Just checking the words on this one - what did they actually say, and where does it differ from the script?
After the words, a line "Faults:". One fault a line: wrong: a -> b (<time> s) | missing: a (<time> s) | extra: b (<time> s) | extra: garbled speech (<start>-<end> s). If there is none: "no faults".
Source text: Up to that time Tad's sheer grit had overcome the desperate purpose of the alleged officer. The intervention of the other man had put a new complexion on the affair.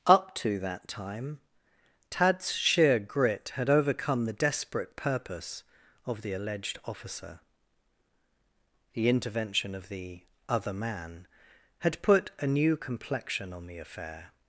Up to that time Tad's sheer grit had overcome the desperate purpose of the alleged officer. The intervention of the other man had put a new complexion on the affair.
Faults:
no faults